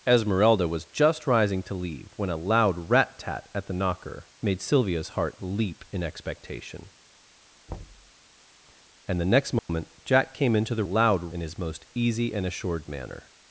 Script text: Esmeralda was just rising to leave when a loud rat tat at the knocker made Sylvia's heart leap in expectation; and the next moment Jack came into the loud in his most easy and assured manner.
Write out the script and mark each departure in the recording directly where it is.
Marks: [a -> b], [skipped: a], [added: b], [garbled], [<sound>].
Esmeralda was just rising to leave when a loud rat tat at the knocker made Sylvia's heart leap in expectation; [thud] and the next moment [dropout] Jack came into the loud in his most easy and assured manner.